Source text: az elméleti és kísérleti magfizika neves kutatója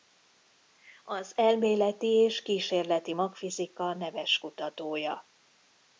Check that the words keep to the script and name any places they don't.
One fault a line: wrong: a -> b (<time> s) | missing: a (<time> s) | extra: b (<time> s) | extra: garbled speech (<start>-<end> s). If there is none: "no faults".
no faults